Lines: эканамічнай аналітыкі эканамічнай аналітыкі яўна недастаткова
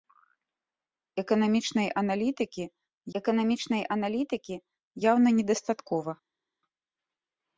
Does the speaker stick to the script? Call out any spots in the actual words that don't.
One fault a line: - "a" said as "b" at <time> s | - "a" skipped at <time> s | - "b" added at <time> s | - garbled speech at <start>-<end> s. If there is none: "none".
none